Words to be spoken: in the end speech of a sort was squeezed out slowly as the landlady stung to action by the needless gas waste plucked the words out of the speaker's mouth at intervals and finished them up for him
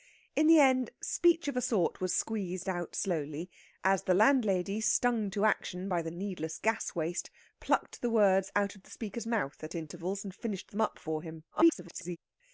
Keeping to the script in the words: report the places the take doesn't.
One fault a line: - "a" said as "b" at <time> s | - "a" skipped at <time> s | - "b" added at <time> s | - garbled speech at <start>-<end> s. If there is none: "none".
- garbled speech at 11.5-12.2 s